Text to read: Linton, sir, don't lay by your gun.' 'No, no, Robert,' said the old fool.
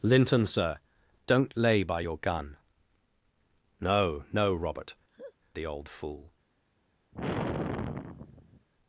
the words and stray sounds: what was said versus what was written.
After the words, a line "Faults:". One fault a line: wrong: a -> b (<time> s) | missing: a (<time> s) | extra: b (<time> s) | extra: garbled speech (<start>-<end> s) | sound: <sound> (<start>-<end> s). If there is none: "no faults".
Linton, sir, don't lay by your gun.' 'No, no, Robert,' the old fool.
Faults:
missing: said (4.9 s)
sound: laugh (5.1-5.3 s)
sound: sigh (7.1-8.7 s)